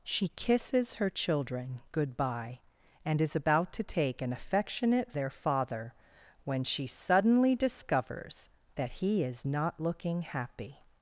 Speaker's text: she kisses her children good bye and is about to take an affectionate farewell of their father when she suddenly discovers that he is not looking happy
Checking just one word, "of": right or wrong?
wrong